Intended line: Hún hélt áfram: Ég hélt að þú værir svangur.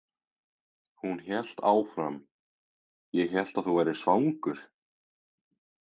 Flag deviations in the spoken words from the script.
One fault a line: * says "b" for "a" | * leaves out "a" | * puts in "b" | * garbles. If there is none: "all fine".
all fine